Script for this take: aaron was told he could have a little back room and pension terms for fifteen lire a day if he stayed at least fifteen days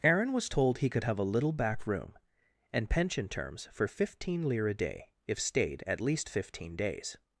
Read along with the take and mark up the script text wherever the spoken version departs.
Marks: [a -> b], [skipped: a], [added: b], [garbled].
aaron was told he could have a little back room and pension terms for fifteen lire a day if [skipped: he] stayed at least fifteen days